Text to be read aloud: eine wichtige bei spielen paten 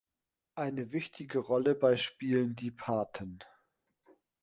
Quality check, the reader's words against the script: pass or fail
fail